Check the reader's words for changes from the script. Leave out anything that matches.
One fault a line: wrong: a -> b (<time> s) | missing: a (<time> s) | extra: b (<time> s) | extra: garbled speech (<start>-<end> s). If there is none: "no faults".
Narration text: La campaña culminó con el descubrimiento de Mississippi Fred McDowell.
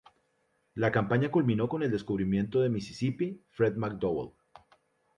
no faults